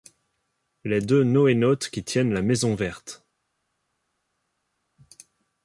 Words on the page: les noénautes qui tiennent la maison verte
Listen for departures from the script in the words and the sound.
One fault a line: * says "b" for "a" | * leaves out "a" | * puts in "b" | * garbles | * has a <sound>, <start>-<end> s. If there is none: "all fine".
* puts in "deux"